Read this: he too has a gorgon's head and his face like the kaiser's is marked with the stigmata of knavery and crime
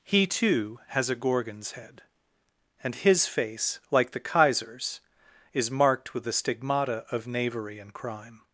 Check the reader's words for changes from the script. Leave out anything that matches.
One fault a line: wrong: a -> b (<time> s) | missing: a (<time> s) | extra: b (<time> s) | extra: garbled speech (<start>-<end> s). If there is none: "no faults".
no faults